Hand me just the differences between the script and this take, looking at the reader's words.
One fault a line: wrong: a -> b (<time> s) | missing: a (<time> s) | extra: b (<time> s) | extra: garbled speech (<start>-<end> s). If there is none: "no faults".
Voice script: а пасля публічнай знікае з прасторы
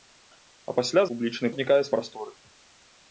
no faults